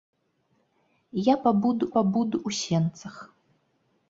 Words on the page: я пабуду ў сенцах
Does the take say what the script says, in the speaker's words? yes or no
no